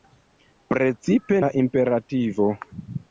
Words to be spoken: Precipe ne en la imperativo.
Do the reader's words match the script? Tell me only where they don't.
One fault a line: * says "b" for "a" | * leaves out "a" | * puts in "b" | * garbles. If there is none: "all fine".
* leaves out "ne en"